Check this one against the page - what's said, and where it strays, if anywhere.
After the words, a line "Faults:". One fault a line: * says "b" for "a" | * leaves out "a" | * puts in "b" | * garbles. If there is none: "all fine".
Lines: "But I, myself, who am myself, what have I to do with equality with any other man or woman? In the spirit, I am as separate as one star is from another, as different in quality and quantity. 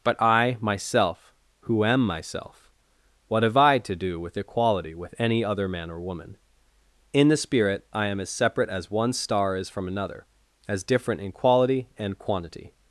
"But I, myself, who am myself, what have I to do with equality with any other man or woman? In the spirit, I am as separate as one star is from another, as different in quality and quantity.
Faults:
all fine